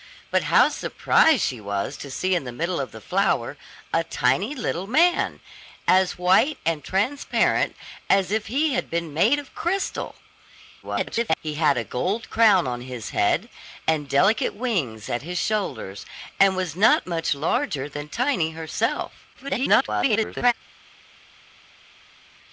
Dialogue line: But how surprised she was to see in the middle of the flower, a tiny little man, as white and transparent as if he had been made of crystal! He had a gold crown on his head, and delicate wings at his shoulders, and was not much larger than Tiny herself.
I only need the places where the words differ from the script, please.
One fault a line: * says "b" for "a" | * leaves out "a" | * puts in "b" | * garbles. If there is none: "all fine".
* garbles
* garbles